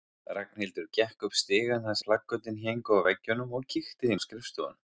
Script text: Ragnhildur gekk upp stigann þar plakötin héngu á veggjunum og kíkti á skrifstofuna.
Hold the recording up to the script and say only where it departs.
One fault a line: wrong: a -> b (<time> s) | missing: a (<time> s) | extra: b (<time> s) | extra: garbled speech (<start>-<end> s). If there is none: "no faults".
no faults